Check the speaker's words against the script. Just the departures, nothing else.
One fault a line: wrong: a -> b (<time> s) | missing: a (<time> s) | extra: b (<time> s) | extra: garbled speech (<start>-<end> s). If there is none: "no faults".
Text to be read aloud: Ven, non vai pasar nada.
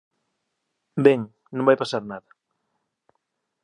no faults